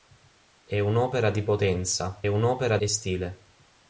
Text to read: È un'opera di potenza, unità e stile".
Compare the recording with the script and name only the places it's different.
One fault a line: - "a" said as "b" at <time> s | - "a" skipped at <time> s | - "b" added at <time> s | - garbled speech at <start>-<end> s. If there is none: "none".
- "unità" said as "un'opera" at 2.3 s